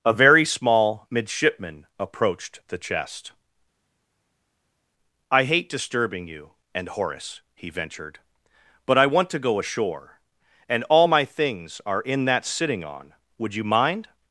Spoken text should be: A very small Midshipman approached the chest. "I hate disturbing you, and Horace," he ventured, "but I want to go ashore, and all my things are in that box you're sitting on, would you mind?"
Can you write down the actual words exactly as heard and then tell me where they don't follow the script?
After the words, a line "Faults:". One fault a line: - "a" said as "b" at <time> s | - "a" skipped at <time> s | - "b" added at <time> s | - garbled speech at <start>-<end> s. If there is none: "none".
A very small Midshipman approached the chest. "I hate disturbing you, and Horace," he ventured, "but I want to go ashore, and all my things are in that sitting on, would you mind?"
Faults:
- "box you're" skipped at 12.4 s